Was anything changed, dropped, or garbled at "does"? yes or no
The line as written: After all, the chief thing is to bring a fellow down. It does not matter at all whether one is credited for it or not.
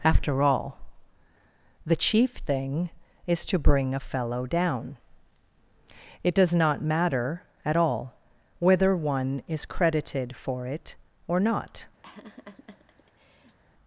no